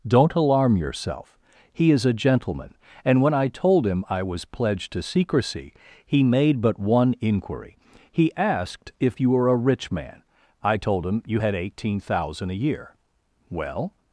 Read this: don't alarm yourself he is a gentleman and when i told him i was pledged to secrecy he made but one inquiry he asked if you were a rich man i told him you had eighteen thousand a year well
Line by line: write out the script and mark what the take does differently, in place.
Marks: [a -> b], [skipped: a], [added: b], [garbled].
don't alarm yourself he is a gentleman and when i told him i was pledged to secrecy he made but one inquiry he asked if you were a rich man i told him you had eighteen thousand a year well